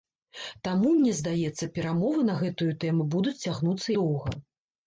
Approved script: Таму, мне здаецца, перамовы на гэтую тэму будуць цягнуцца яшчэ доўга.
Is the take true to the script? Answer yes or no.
no